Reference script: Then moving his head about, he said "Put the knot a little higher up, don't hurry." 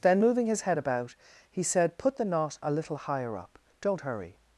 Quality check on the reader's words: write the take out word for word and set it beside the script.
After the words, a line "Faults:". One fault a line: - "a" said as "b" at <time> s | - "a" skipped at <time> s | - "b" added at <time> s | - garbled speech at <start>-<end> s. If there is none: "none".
Then moving his head about, he said "Put the knot a little higher up, don't hurry."
Faults:
none